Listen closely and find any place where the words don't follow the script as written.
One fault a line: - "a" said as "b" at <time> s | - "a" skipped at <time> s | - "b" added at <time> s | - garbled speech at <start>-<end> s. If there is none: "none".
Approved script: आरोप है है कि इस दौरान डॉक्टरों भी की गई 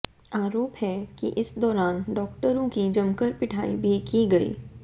- "है" skipped at 0.9 s
- "की जमकर पिटाई" added at 2.7 s